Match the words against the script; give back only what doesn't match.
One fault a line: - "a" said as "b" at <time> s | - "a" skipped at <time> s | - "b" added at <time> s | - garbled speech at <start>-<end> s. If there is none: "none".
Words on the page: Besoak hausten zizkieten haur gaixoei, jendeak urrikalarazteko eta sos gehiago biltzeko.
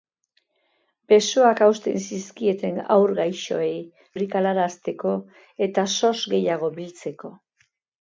- "jendeak" skipped at 3.8 s